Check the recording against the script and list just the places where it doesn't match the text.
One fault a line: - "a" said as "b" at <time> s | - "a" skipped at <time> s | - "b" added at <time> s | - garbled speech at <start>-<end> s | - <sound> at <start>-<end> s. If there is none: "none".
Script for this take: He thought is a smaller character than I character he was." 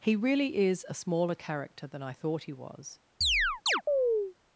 - "thought" said as "really" at 0.1 s
- "character" said as "thought" at 2.1 s
- chirp at 3.2-4.3 s